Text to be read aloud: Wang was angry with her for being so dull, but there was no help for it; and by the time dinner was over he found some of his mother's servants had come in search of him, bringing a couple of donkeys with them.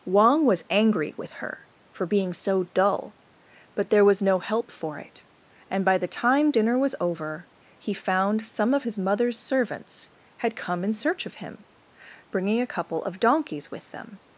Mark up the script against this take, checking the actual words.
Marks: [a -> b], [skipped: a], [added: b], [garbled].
Wang was angry with her for being so dull, but there was no help for it; and by the time dinner was over he found some of his mother's servants had come in search of him, bringing a couple of donkeys with them.